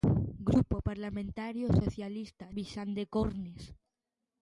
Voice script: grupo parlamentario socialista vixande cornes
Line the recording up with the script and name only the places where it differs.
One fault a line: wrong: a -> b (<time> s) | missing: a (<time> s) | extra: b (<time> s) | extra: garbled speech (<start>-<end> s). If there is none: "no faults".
no faults